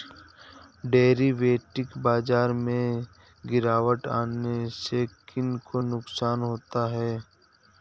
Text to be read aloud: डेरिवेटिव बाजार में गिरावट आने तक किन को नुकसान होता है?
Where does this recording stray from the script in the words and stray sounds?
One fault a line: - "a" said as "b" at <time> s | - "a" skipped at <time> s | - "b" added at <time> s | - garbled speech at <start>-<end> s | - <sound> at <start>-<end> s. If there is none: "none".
- "तक" said as "से" at 4.7 s